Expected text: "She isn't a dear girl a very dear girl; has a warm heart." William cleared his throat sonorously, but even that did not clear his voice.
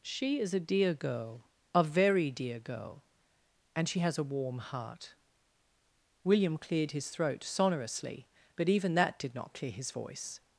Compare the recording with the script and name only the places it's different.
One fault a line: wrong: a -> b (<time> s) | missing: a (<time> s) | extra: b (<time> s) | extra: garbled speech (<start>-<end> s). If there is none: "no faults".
wrong: isn't -> is (0.4 s)
extra: and she (3.8 s)